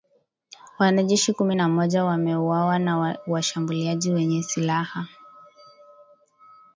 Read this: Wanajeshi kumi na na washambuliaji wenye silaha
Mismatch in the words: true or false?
true